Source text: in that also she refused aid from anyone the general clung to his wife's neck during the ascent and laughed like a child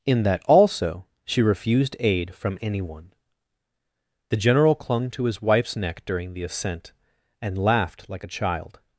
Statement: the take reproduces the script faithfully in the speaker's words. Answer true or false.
true